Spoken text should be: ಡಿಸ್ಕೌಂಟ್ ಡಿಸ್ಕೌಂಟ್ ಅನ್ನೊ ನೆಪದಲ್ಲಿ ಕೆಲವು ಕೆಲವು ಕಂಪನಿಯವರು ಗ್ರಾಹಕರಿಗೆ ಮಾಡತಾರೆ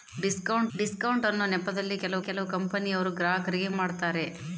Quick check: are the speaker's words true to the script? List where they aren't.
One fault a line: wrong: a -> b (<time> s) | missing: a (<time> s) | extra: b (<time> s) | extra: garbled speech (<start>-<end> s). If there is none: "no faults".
no faults